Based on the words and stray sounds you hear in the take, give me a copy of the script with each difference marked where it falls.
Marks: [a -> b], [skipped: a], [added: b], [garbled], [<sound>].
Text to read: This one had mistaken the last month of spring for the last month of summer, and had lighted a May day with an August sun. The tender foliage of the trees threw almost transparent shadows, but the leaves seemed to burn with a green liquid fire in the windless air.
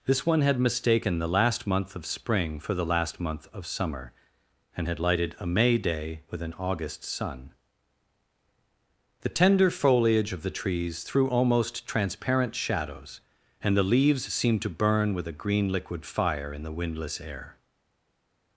This one had mistaken the last month of spring for the last month of summer, and had lighted a May day with an August sun. The tender foliage of the trees threw almost transparent shadows, [but -> and] the leaves seemed to burn with a green liquid fire in the windless air.